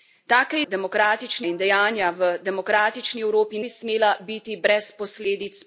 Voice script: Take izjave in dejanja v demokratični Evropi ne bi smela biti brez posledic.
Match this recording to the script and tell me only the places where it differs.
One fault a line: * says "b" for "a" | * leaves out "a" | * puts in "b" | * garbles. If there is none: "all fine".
* says "demokratični" for "izjave"
* leaves out "ne"